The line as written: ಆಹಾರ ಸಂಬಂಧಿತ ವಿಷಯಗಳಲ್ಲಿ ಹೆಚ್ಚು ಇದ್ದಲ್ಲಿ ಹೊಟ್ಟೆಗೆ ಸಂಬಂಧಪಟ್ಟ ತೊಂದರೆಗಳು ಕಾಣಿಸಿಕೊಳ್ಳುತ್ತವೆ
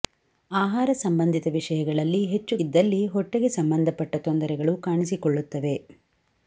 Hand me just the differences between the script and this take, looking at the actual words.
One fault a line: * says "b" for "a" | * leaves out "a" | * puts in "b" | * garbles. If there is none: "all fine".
all fine